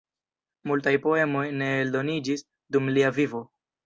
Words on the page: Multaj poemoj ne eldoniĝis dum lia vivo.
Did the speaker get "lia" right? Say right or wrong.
right